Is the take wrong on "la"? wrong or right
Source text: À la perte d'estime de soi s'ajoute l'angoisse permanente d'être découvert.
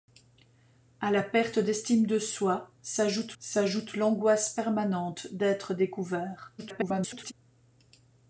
right